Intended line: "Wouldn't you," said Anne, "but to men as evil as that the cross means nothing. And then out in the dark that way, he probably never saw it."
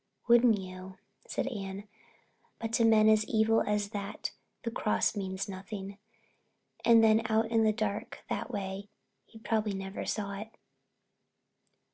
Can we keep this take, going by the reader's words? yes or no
yes